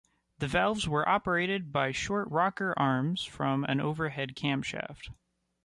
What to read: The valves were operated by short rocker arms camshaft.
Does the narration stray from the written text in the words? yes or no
yes